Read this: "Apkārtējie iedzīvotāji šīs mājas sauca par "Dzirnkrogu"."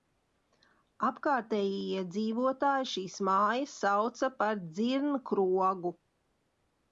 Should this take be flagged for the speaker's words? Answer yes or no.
no